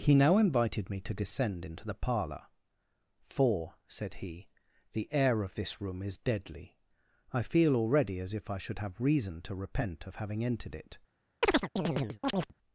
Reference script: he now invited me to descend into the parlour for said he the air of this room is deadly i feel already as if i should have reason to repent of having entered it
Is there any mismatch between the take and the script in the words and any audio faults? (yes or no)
yes